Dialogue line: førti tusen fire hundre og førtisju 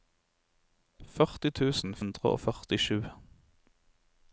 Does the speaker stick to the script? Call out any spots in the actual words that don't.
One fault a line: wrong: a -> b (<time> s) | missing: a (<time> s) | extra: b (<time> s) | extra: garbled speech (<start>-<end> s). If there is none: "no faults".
missing: fire (1.9 s)